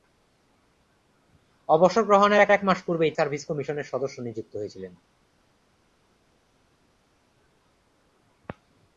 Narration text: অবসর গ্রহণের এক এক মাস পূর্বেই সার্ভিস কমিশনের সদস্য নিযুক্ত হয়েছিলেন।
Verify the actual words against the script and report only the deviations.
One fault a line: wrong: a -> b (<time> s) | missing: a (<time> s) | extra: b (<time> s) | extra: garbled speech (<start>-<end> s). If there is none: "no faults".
no faults